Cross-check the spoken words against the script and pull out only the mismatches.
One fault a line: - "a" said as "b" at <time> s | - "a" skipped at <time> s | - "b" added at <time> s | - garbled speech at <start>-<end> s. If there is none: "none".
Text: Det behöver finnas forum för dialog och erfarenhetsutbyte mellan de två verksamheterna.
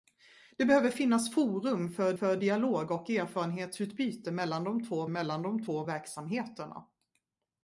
- "för" added at 2.1 s
- "mellan de två" added at 5.1 s